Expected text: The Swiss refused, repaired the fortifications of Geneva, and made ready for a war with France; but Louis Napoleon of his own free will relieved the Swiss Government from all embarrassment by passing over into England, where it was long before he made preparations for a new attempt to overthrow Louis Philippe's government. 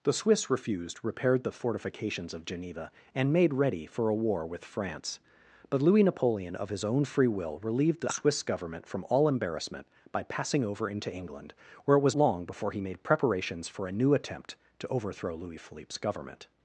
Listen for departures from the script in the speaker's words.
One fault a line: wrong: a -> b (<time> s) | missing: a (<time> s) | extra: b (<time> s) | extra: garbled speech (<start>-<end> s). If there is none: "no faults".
no faults